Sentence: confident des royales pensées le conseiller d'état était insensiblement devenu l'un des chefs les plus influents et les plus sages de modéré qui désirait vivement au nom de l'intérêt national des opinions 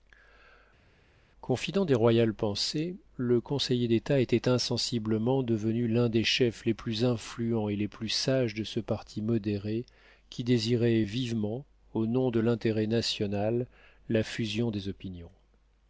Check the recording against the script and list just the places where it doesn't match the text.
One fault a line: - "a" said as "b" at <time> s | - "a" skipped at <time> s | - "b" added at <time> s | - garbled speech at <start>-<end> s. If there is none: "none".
- "ce parti" added at 8.6 s
- "la fusion" added at 14.1 s